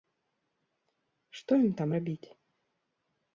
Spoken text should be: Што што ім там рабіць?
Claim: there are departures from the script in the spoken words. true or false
true